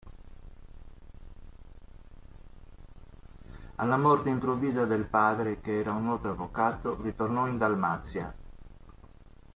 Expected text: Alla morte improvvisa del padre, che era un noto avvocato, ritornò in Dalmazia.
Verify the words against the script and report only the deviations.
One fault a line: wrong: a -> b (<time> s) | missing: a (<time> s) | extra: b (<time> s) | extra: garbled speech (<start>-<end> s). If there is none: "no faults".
no faults